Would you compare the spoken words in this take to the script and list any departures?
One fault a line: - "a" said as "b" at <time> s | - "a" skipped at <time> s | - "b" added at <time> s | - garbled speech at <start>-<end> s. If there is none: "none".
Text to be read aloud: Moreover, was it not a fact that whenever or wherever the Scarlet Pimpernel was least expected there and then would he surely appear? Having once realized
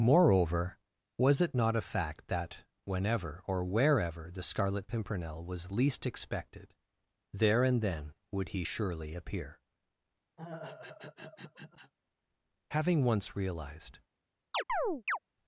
none